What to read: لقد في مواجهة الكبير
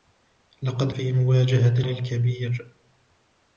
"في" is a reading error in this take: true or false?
false